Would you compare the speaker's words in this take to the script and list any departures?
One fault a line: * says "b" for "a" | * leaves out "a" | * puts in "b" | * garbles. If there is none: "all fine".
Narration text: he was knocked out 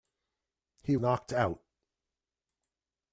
* leaves out "was"